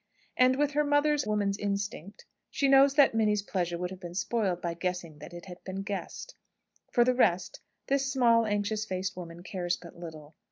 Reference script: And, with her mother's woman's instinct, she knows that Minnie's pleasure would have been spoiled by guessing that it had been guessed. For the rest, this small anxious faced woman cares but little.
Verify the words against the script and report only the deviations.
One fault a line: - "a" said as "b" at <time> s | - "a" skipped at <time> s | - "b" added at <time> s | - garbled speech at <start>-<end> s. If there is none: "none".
none